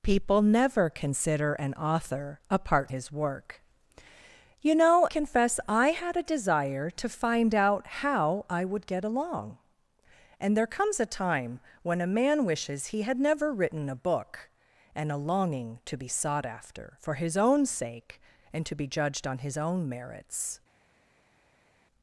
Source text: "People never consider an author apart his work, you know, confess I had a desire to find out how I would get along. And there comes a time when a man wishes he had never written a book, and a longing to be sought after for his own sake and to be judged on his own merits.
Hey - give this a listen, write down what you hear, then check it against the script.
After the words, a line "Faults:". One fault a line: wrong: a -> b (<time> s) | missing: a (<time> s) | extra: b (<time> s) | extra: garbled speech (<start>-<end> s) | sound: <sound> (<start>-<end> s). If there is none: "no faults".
"People never consider an author apart his work, you know, confess I had a desire to find out how I would get along. And there comes a time when a man wishes he had never written a book, and a longing to be sought after for his own sake and to be judged on his own merits.
Faults:
no faults